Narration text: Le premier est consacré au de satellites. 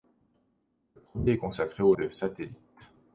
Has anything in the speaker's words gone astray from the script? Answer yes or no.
no